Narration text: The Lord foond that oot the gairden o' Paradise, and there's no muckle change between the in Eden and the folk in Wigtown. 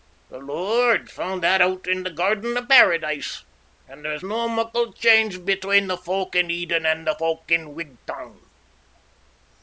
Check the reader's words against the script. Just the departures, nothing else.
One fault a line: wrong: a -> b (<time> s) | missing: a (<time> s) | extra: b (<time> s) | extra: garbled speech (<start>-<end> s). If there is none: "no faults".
extra: in (1.9 s)
extra: folk (6.0 s)